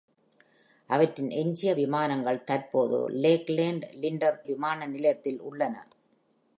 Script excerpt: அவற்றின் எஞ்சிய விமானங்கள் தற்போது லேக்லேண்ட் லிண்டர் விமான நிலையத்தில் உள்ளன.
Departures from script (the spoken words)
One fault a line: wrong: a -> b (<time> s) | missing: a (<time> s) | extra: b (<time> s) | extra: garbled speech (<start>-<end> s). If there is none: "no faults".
no faults